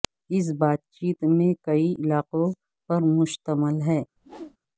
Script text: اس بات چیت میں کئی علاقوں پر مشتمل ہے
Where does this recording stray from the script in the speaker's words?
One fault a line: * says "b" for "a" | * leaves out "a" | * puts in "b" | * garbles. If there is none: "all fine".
all fine